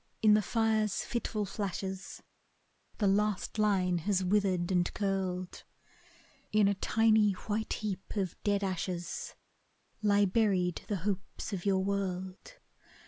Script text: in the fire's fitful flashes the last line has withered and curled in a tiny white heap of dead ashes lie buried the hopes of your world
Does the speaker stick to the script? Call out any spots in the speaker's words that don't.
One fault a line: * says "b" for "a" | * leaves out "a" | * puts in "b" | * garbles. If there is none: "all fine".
all fine